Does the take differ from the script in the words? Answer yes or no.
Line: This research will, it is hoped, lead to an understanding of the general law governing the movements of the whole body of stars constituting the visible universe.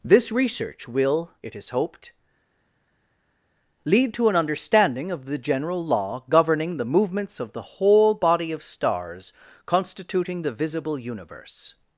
no